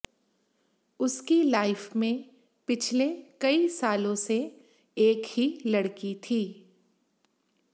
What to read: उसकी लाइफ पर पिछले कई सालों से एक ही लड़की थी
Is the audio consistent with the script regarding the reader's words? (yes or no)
no